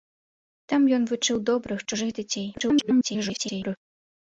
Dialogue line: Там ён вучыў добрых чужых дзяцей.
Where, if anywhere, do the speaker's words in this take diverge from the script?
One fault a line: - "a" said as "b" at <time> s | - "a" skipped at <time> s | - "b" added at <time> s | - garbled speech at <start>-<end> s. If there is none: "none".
- garbled speech at 2.5-3.8 s